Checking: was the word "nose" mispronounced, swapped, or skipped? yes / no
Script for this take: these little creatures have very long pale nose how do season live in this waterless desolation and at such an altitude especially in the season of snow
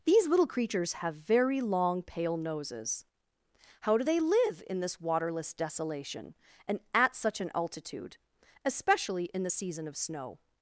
yes